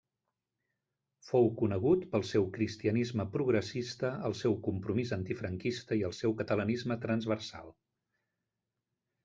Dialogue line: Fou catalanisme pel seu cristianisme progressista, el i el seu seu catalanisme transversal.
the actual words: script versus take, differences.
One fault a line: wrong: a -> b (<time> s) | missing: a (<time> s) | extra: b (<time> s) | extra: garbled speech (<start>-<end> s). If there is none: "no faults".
wrong: catalanisme -> conegut (1.6 s)
extra: seu compromís antifranquista (4.4 s)
missing: seu (6.3 s)